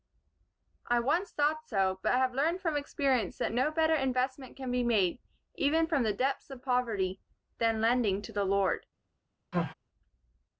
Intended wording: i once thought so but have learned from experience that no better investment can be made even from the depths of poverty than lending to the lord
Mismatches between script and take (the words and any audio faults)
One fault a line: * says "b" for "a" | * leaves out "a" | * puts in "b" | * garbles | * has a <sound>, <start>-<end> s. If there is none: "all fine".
* has a sneeze, 9.5-9.7 s